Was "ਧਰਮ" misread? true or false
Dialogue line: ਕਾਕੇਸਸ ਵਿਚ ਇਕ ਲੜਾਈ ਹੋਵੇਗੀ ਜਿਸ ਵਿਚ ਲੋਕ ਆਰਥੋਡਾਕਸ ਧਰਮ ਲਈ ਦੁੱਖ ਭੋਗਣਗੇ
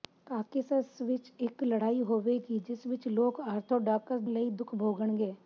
true